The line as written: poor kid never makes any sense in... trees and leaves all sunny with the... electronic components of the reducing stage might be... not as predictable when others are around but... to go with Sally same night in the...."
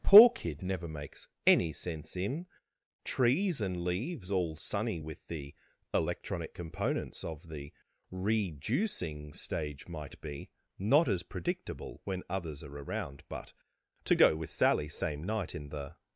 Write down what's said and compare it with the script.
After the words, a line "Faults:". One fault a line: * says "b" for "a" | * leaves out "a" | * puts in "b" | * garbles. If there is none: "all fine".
poor kid never makes any sense in... trees and leaves all sunny with the... electronic components of the reducing stage might be... not as predictable when others are around but... to go with Sally same night in the...."
Faults:
all fine